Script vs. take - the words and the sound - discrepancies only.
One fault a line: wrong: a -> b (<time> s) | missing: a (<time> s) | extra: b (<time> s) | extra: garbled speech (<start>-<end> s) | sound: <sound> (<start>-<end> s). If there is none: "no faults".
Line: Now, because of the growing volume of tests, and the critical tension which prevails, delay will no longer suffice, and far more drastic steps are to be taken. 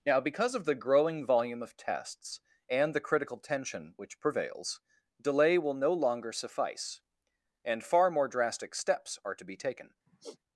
sound: sigh (10.1-10.4 s)